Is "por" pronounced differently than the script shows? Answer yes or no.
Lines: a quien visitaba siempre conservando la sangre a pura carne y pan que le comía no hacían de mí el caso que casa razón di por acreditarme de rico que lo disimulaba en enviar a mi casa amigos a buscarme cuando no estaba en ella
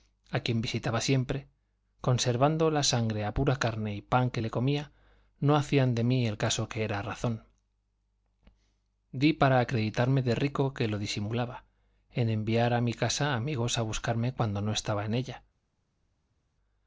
yes